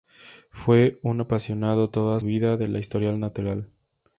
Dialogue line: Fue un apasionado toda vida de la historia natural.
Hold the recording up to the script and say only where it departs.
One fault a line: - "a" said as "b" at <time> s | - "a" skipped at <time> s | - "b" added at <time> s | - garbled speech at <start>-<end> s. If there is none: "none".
none